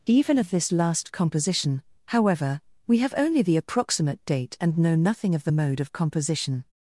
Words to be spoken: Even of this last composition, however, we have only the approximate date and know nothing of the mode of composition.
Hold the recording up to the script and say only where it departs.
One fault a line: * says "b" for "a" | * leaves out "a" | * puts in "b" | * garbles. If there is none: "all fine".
all fine